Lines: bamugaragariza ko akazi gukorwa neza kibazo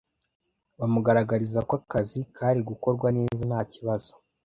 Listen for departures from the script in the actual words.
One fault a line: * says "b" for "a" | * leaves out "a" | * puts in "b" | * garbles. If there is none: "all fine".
* puts in "kari"
* puts in "nta"